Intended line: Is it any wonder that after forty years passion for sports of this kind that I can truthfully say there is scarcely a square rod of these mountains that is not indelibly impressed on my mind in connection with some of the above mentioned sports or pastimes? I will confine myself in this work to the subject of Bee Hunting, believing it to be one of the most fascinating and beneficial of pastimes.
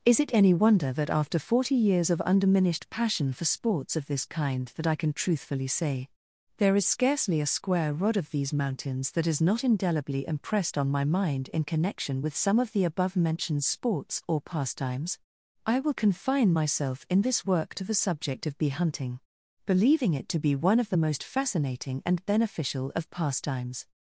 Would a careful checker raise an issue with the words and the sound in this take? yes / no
yes